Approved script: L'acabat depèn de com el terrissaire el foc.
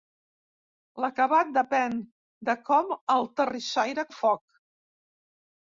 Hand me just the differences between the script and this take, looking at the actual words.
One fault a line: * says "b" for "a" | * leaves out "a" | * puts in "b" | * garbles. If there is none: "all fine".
all fine